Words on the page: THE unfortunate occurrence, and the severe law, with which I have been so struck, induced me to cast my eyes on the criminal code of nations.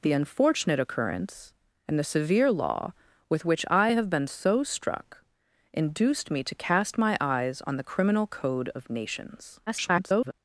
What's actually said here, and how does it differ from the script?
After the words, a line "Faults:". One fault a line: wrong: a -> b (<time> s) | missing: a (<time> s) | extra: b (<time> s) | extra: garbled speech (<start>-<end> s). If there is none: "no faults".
THE unfortunate occurrence, and the severe law, with which I have been so struck, induced me to cast my eyes on the criminal code of nations. [garbled]
Faults:
extra: garbled speech (9.7-10.3 s)